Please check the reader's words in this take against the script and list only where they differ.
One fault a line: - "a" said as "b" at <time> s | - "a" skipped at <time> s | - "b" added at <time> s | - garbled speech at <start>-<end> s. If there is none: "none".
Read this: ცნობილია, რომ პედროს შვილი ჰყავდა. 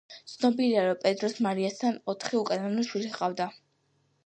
- "მარიასთან ოთხი უკანონო" added at 1.5 s